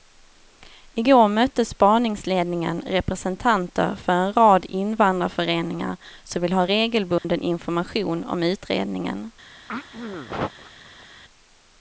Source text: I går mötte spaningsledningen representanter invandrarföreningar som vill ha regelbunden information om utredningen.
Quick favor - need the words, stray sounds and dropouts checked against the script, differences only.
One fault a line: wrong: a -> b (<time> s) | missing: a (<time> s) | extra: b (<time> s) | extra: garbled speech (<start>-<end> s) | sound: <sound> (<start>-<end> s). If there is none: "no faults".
extra: för en rad (3.9 s)
sound: dropout (7.2-7.2 s)
sound: throat clearing (9.7-11.1 s)